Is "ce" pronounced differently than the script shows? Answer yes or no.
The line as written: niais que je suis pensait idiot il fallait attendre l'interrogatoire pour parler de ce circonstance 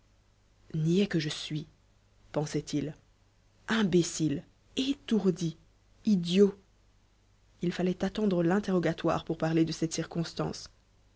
yes